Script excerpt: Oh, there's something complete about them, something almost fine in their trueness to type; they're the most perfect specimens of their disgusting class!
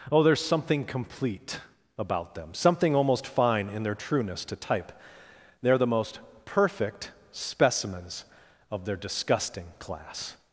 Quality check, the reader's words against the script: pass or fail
pass